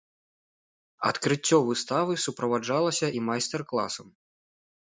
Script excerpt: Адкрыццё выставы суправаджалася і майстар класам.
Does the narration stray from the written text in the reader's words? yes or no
no